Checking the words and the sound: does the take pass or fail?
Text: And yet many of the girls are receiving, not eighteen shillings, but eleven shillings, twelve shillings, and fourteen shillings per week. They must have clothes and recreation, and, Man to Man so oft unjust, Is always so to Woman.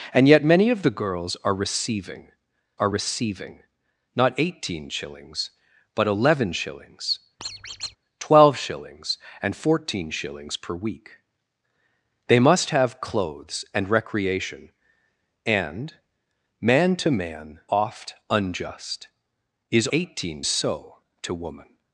fail